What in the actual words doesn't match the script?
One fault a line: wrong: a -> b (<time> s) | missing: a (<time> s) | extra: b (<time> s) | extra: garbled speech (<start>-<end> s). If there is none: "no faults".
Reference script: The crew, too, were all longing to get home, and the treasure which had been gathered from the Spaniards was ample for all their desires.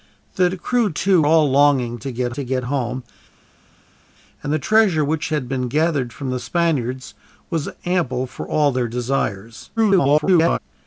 missing: were (1.2 s)
extra: to get (2.3 s)
extra: garbled speech (9.8-10.6 s)